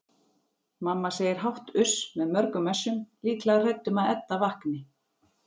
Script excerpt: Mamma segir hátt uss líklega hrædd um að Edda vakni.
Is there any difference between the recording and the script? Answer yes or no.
yes